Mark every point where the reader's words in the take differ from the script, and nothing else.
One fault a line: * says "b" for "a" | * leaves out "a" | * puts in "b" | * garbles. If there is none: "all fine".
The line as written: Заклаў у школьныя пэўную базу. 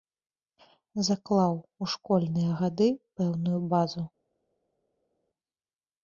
* puts in "гады"